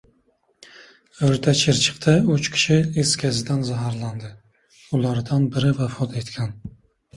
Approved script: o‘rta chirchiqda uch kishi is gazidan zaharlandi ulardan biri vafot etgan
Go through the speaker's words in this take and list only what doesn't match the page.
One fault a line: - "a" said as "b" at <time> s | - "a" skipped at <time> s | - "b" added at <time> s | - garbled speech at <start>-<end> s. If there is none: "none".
none